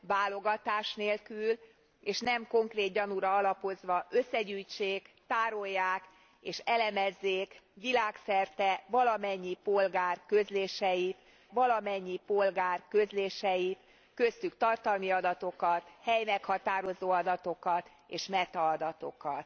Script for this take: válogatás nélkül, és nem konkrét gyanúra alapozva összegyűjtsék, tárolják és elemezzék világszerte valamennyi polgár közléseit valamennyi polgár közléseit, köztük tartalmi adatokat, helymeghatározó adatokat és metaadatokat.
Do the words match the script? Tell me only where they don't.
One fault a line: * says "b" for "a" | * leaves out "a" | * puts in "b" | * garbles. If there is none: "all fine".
all fine